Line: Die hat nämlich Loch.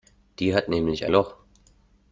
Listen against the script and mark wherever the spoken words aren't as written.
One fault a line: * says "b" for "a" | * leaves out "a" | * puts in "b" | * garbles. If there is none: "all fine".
all fine